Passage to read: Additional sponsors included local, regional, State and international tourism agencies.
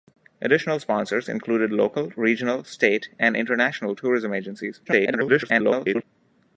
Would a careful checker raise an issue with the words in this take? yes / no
yes